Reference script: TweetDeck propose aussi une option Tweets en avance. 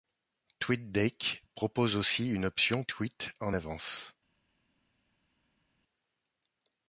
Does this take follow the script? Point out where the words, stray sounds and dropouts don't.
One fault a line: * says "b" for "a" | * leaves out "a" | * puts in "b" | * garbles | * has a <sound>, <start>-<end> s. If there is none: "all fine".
all fine